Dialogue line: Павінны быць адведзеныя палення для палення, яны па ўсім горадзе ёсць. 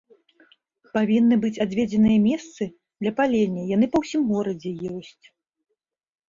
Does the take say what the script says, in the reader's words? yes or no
no